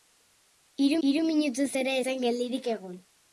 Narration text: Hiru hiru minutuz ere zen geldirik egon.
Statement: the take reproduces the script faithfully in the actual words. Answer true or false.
true